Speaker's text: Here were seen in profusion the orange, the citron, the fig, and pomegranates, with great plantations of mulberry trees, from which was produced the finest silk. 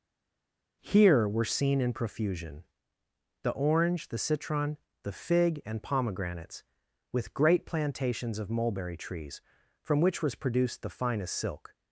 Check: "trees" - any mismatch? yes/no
no